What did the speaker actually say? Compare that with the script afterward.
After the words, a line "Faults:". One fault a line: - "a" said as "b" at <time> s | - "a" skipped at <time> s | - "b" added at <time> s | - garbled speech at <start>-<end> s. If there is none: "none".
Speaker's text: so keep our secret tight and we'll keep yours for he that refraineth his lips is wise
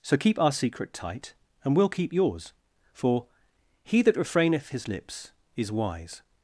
so keep our secret tight and we'll keep yours for he that refraineth his lips is wise
Faults:
none